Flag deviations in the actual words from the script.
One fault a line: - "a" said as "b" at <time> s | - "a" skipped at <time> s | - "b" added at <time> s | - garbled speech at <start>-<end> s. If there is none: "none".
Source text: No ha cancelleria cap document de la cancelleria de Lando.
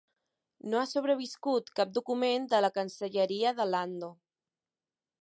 - "cancelleria" said as "sobreviscut" at 0.9 s